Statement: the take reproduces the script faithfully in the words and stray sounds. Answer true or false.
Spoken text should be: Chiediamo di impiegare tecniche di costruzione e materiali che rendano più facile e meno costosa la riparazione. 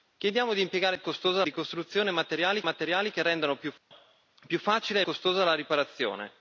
false